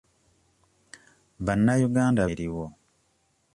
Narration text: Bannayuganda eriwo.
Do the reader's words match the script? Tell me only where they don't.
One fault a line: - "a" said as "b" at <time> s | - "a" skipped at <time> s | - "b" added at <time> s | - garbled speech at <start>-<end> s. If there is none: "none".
none